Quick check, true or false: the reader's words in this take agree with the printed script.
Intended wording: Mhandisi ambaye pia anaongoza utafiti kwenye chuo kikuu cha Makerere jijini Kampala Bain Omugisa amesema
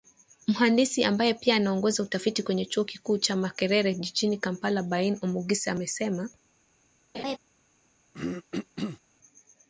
true